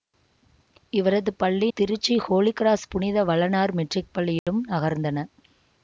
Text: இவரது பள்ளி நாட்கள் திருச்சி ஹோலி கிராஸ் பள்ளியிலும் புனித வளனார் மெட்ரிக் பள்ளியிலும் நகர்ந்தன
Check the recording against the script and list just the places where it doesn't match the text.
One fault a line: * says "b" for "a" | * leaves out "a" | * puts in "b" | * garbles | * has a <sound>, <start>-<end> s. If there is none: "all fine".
* leaves out "நாட்கள்"
* leaves out "பள்ளியிலும்"
* has a dropout, 4.4-4.5 s